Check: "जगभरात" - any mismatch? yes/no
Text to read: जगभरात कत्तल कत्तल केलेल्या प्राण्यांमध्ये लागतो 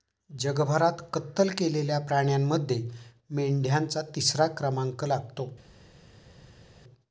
no